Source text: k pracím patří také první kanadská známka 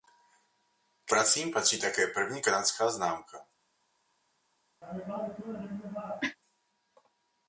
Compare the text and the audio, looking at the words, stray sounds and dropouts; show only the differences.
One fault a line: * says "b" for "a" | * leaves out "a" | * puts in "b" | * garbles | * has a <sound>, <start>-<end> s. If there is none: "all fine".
* has a cough, 4.8-6.4 s